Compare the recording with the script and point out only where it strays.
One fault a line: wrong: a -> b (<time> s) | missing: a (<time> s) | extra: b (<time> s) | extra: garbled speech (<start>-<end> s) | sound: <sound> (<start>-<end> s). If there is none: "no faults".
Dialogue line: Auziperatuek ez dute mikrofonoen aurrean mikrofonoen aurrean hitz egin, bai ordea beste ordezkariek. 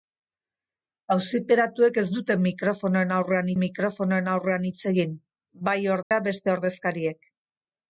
sound: dropout (6.0-6.1 s)